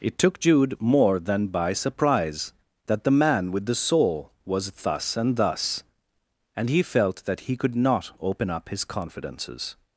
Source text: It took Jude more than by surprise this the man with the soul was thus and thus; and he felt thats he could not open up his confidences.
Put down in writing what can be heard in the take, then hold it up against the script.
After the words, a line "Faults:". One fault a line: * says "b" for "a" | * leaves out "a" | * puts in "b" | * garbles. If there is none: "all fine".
It took Jude more than by surprise that the man with the soul was thus and thus; and he felt that he could not open up his confidences.
Faults:
* says "that" for "this"
* says "that" for "thats"